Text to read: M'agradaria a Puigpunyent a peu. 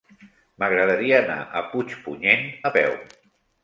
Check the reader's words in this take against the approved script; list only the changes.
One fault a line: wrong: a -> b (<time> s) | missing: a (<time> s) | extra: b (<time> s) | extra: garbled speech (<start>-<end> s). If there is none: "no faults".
extra: anar (1.2 s)